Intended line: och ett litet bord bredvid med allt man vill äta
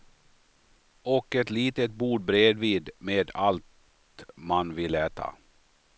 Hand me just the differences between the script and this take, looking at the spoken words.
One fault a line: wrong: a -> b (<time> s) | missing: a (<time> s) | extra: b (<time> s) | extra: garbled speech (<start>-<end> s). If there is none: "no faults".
no faults